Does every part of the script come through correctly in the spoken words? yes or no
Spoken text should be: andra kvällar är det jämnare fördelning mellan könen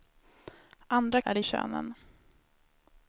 no